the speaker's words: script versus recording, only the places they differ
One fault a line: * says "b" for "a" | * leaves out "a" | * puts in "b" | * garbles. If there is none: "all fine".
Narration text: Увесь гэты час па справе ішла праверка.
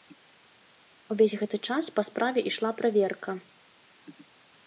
all fine